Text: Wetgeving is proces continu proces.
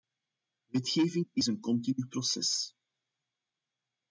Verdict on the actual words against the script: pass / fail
fail